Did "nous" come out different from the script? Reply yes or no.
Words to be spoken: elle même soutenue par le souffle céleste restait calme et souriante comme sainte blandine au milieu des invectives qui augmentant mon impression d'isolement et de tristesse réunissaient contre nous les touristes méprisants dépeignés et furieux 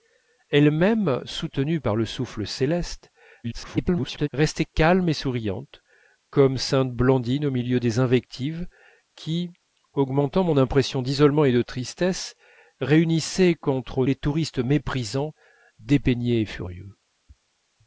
yes